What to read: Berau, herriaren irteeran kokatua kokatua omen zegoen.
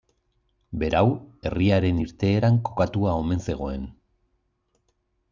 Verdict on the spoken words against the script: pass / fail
fail